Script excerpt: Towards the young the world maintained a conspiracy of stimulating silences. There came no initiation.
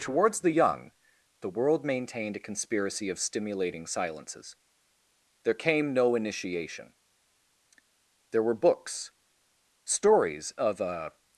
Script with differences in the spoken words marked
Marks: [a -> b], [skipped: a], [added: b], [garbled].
Towards the young the world maintained a conspiracy of stimulating silences. There came no initiation. [added: There were books stories of a]